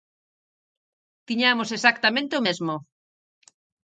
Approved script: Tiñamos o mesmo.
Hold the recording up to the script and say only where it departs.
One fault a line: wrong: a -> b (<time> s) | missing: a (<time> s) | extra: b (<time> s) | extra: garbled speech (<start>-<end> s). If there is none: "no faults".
extra: exactamente (1.8 s)